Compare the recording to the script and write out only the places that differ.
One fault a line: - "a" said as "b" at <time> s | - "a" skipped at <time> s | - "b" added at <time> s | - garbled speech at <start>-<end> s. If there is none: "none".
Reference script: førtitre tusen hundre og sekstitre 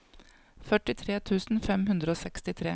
- "fem" added at 1.7 s